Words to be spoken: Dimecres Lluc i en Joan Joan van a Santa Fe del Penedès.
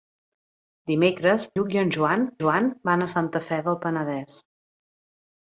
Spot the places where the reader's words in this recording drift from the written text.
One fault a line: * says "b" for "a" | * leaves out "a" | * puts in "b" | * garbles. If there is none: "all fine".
all fine